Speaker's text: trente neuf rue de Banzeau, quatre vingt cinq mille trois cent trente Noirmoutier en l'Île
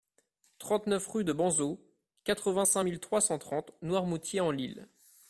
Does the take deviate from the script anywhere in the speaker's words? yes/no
no